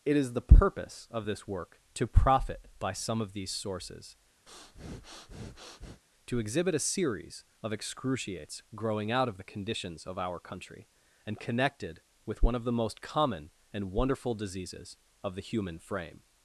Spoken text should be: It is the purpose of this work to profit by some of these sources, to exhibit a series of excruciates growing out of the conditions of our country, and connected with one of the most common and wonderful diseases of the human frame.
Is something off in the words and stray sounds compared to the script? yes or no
yes